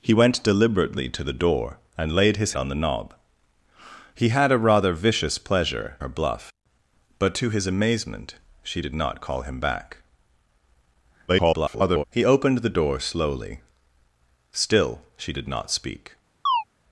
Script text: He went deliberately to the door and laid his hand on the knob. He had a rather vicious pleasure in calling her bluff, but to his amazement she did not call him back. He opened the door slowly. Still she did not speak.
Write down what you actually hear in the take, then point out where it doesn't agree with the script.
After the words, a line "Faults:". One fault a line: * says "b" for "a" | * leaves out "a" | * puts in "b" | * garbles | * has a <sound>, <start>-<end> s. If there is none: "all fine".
He went deliberately to the door and laid his on the knob. He had a rather vicious pleasure her bluff, but to his amazement she did not call him back. [garbled] He opened the door slowly. Still she did not speak.
Faults:
* leaves out "hand"
* leaves out "in calling"
* garbles
* has a chirp, 16.5-16.6 s